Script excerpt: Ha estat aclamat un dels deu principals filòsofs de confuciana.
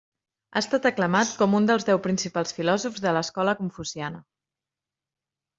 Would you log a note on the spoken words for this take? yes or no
yes